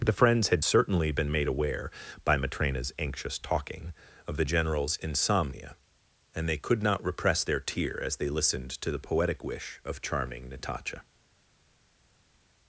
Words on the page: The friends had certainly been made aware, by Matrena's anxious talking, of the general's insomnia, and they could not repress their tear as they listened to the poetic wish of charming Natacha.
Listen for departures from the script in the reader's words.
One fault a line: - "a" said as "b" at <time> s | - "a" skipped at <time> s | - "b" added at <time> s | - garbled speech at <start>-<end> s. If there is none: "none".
none